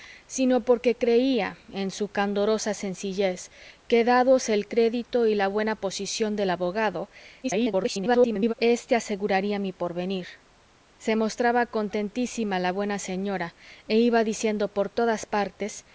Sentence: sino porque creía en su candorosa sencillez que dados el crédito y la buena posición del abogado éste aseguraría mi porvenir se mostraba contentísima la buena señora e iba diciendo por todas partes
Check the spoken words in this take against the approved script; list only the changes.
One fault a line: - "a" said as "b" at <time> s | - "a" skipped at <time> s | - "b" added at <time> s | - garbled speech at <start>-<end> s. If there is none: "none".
- garbled speech at 7.4-8.5 s